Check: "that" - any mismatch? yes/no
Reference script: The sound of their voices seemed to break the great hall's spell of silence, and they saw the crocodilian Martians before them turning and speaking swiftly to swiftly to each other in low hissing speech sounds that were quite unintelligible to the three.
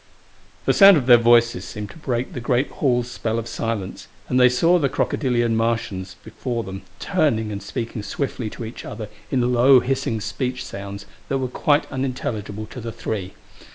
no